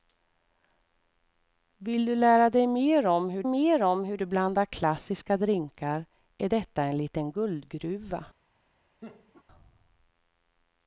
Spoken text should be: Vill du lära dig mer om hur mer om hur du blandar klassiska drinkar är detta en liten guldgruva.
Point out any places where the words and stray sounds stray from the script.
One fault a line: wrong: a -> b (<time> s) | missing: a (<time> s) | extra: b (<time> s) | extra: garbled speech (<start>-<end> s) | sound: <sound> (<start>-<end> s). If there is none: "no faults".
sound: laugh (9.0-9.4 s)